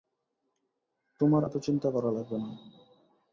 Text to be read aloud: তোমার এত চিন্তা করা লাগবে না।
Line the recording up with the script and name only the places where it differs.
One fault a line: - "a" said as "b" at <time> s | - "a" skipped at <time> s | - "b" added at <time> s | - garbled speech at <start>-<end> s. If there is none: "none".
none